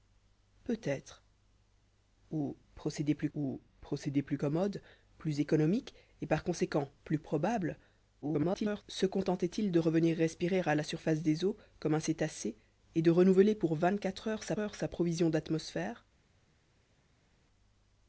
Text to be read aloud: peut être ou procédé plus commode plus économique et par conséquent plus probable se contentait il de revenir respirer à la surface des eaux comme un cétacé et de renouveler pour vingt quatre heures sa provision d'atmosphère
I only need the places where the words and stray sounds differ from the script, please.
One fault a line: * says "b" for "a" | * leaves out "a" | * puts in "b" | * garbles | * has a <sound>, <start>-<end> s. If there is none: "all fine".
* puts in "ou procédé plus"
* garbles
* puts in "heures sa"